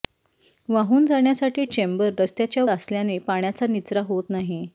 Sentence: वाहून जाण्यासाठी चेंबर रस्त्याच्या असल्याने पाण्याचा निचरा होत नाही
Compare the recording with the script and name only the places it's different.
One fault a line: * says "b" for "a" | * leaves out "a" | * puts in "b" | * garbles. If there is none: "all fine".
all fine